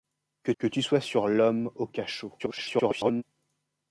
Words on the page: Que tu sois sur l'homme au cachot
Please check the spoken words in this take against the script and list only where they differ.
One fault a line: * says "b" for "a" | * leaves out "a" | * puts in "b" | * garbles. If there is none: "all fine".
* puts in "que"
* garbles